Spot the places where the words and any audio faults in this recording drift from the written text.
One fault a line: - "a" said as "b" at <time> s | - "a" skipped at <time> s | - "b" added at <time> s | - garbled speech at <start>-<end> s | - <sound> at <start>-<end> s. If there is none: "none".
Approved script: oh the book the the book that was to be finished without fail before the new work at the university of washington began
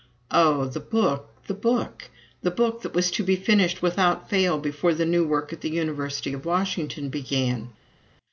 - "book" added at 1.5 s